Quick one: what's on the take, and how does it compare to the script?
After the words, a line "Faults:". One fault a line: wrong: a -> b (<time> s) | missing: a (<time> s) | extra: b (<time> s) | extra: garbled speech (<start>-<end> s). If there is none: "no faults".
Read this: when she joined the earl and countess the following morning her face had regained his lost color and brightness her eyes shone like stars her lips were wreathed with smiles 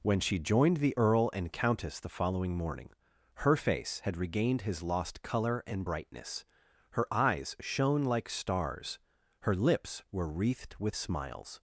when she joined the earl and countess the following morning her face had regained his lost color and brightness her eyes shone like stars her lips were wreathed with smiles
Faults:
no faults